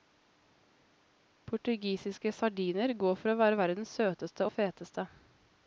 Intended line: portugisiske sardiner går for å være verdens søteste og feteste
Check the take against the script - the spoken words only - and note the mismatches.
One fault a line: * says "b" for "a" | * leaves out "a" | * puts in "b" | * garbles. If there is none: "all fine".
all fine